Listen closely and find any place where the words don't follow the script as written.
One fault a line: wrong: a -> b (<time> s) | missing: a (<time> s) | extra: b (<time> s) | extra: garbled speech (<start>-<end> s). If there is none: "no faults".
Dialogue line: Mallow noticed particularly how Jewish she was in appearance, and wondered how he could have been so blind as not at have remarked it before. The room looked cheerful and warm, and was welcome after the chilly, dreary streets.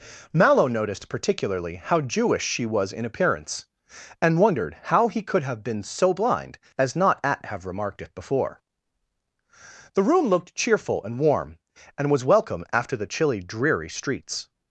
no faults